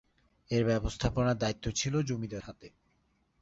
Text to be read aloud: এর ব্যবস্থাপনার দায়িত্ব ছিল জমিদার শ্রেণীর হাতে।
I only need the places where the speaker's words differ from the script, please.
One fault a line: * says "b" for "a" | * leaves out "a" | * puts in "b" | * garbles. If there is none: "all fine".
* leaves out "শ্রেণীর"